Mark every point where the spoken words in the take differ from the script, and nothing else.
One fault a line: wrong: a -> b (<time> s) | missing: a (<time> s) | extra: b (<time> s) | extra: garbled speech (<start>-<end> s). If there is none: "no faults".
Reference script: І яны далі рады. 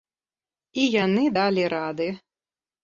no faults